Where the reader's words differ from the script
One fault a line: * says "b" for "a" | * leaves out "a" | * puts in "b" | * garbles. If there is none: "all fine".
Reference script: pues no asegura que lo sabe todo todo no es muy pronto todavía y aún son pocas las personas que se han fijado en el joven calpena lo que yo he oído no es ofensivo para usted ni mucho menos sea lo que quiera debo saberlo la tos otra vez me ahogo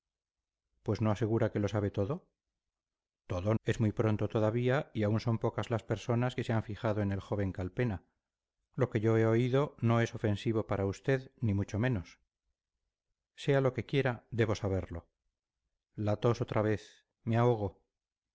* leaves out "no"